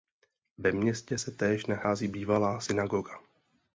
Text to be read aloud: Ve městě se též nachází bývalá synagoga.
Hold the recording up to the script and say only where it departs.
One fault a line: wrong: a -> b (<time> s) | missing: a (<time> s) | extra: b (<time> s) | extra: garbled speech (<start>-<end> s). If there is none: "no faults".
no faults